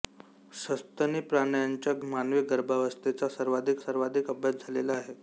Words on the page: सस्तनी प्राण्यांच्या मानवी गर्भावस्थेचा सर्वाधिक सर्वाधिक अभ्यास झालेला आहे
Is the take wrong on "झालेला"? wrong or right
right